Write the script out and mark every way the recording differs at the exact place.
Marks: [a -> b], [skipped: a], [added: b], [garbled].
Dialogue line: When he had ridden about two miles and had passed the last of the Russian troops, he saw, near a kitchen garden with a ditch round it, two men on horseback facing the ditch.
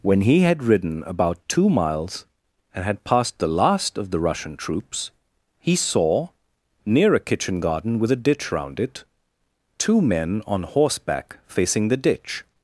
When he had ridden about two miles and had passed the last of the Russian troops, he saw, near a kitchen garden with a ditch round it, two men on horseback facing the ditch.